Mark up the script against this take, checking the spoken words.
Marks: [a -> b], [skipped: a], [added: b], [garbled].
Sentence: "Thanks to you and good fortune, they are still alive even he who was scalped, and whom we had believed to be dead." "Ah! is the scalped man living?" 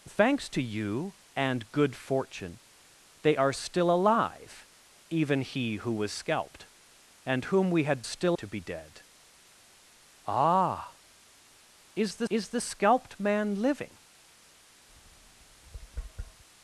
"Thanks to you and good fortune, they are still alive even he who was scalped, and whom we had [believed -> still] to be dead." "Ah! is the [added: is the] scalped man living?"